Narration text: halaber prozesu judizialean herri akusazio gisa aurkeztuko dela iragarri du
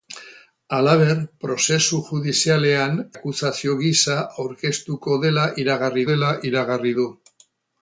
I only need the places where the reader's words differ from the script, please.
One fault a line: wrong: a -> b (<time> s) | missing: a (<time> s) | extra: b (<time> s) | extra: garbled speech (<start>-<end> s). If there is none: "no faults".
missing: herri (3.0 s)
extra: dela iragarri (6.1 s)